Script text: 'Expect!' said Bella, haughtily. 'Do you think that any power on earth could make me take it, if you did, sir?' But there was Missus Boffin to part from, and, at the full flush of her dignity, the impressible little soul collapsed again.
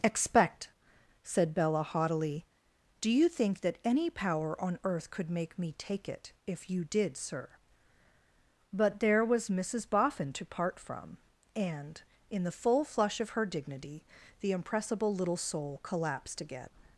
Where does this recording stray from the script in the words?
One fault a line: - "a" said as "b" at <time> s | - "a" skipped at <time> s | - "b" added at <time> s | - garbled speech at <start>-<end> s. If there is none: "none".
- "at" said as "in" at 12.3 s